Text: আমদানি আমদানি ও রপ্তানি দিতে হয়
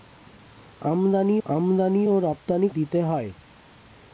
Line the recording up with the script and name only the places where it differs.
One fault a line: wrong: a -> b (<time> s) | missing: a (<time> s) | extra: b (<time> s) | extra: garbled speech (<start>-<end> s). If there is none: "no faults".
no faults